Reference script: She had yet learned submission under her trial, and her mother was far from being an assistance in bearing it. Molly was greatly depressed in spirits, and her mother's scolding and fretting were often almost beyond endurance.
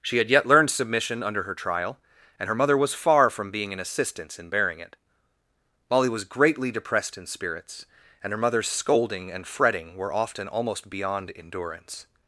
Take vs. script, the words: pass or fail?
pass